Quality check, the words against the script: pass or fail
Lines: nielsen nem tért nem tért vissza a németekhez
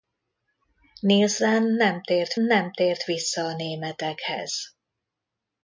pass